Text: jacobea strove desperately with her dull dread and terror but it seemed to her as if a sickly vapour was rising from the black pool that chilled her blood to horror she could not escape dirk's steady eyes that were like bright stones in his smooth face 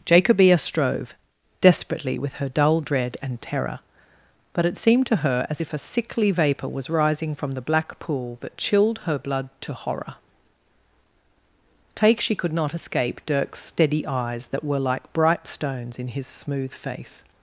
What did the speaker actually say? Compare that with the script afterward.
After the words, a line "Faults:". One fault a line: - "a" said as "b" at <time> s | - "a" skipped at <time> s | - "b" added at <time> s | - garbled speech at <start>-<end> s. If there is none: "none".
jacobea strove desperately with her dull dread and terror but it seemed to her as if a sickly vapour was rising from the black pool that chilled her blood to horror take she could not escape dirk's steady eyes that were like bright stones in his smooth face
Faults:
- "take" added at 11.9 s